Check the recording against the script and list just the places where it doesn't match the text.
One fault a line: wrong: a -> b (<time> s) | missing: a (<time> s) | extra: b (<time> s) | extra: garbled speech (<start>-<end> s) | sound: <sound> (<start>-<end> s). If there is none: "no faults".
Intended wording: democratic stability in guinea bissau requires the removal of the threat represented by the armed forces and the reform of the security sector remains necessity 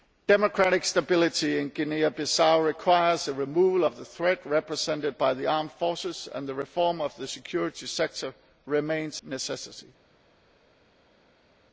no faults